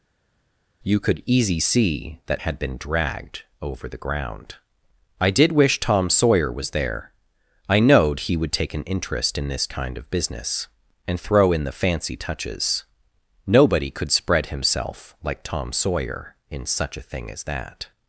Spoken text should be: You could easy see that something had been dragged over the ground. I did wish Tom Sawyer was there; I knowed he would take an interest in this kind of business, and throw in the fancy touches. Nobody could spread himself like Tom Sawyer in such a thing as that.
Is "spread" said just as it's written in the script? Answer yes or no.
yes